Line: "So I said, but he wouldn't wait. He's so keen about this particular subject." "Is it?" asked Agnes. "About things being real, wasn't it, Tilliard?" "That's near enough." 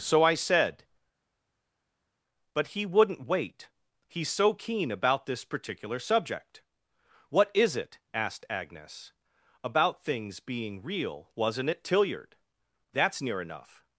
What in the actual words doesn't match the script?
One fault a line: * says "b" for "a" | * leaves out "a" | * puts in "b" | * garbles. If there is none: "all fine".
* puts in "What"